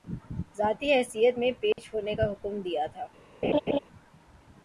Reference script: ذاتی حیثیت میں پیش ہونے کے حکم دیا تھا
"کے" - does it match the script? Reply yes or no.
no